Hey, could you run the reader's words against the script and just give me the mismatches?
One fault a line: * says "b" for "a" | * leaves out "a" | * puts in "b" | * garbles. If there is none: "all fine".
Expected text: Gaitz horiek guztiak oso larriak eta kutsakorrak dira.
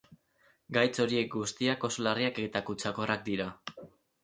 all fine